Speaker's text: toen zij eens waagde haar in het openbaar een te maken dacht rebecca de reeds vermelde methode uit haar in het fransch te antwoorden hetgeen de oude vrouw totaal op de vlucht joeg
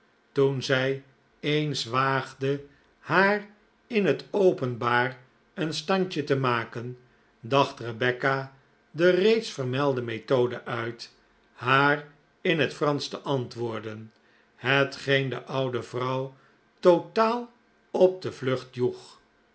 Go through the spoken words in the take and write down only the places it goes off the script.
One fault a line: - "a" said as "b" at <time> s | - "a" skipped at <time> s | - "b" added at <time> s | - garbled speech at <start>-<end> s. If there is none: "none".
- "standje" added at 5.7 s